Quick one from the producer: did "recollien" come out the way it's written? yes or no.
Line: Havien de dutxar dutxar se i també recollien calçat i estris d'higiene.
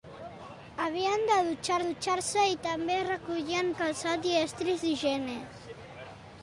yes